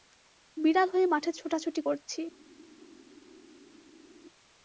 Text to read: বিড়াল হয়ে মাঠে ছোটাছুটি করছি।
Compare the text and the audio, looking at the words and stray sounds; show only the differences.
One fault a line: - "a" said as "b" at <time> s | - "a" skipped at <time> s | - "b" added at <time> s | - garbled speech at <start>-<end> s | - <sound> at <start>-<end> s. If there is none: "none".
none